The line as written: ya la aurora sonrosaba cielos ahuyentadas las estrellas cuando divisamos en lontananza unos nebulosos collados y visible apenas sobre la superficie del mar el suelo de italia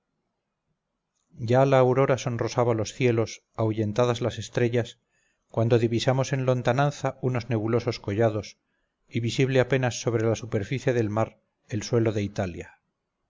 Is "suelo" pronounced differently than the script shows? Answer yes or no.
no